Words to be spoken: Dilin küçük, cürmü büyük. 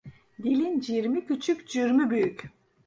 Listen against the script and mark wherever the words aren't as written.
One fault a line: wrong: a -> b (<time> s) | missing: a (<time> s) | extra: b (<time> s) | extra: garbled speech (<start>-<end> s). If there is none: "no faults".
extra: cirmi (0.8 s)